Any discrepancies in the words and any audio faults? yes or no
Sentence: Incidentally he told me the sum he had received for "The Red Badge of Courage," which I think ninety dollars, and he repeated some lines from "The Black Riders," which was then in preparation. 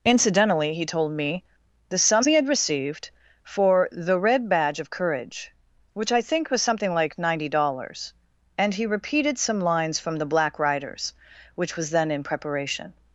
yes